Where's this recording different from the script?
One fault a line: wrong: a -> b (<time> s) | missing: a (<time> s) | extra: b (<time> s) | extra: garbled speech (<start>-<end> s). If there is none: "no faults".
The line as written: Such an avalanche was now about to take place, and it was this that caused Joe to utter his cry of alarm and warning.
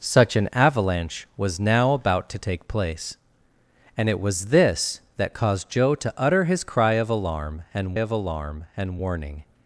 extra: of alarm and (7.9 s)